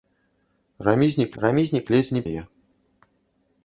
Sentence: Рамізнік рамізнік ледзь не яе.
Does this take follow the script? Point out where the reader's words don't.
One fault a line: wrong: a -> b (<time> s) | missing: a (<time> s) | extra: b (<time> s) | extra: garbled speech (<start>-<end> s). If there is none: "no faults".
no faults